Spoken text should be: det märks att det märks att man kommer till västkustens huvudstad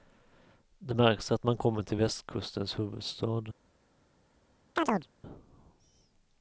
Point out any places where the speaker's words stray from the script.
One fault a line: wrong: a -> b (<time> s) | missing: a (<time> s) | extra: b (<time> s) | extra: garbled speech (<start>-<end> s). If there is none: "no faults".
missing: det märks att (1.5 s)